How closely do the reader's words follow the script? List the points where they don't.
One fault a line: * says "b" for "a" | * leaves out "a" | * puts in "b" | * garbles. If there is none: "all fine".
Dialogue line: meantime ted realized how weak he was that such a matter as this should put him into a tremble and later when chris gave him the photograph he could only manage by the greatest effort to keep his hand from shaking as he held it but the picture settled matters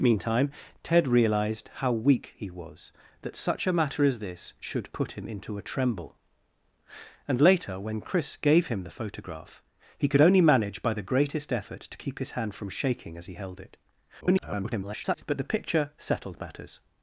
* garbles